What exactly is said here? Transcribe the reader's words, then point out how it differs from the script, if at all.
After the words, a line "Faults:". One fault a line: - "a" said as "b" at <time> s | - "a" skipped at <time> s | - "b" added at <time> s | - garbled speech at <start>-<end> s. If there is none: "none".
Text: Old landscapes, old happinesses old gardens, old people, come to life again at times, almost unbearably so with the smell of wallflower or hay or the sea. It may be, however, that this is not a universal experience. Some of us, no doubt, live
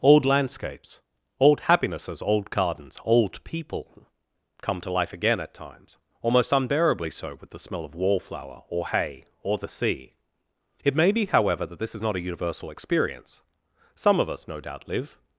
Old landscapes, old happinesses old gardens, old people, come to life again at times, almost unbearably so with the smell of wallflower or hay or the sea. It may be, however, that this is not a universal experience. Some of us, no doubt, live
Faults:
none